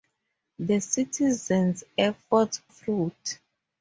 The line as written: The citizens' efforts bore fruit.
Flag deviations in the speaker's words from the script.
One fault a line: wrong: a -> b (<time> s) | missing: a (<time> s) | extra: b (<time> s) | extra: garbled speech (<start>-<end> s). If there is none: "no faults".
missing: bore (2.6 s)